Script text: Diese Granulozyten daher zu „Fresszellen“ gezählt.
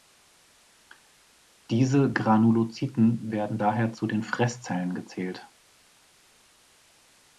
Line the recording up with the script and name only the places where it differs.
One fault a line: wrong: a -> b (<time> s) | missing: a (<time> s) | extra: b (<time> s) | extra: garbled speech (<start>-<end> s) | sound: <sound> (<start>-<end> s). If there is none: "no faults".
extra: werden (3.3 s)
extra: den (4.1 s)